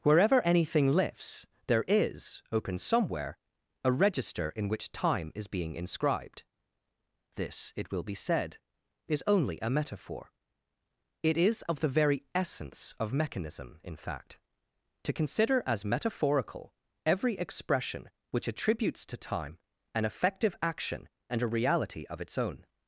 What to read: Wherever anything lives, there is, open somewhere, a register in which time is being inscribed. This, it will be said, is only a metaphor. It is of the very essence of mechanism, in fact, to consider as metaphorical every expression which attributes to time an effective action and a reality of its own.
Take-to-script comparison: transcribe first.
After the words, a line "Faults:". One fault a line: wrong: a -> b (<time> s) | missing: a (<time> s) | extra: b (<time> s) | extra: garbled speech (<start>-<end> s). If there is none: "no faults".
Wherever anything lifts, there is, open somewhere, a register in which time is being inscribed. This, it will be said, is only a metaphor. It is of the very essence of mechanism, in fact, to consider as metaphorical every expression which attributes to time an effective action and a reality of its own.
Faults:
wrong: lives -> lifts (0.9 s)